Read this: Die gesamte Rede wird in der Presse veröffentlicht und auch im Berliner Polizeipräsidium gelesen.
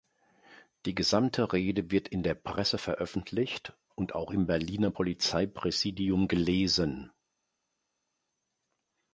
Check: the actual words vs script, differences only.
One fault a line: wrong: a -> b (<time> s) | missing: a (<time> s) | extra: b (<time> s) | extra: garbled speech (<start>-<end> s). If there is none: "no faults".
no faults